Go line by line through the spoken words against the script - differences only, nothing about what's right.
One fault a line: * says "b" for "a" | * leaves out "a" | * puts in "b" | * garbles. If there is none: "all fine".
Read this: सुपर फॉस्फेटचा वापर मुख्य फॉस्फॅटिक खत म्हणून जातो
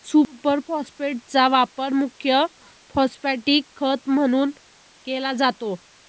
* puts in "केला"